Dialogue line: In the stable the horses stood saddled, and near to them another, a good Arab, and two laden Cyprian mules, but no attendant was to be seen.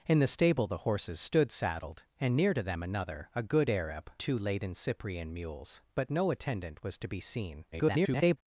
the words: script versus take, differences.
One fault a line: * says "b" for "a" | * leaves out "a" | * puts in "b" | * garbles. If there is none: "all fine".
* leaves out "and"
* garbles